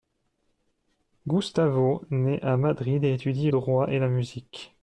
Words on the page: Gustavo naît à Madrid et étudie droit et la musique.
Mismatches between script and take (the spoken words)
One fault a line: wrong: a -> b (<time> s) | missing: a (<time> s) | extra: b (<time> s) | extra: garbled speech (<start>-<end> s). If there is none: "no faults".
no faults